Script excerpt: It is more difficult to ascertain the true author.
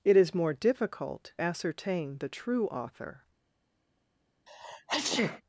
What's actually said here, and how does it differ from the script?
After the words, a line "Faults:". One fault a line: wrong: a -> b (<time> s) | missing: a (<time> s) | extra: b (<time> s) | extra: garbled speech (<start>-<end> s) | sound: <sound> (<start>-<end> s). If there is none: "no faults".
It is more difficult ascertain the true author.
Faults:
missing: to (1.3 s)
sound: sneeze (4.5-5.4 s)